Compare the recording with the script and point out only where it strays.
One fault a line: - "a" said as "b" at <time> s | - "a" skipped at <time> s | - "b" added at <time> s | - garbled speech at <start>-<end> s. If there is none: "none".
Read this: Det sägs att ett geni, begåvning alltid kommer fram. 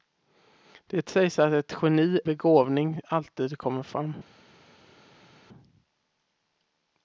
none